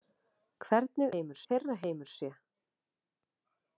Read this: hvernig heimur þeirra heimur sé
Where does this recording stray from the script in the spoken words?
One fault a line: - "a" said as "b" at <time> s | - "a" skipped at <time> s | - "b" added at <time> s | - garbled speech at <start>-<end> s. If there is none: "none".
none